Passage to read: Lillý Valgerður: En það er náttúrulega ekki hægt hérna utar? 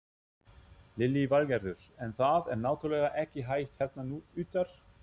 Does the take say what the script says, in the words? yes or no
yes